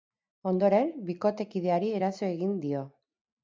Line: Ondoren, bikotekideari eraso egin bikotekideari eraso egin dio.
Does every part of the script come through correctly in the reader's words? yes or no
no